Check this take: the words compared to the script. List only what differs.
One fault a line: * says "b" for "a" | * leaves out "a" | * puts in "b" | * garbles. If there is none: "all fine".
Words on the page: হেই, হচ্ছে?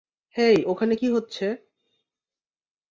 * puts in "ওখানে কী"